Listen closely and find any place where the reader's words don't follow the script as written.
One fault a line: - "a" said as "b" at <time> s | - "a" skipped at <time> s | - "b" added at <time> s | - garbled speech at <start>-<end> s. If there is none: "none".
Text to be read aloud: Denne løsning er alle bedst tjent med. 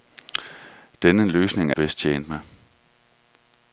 - "alle" skipped at 1.8 s